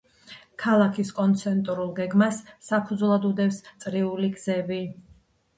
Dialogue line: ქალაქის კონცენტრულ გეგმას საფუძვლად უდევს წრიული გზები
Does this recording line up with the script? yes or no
yes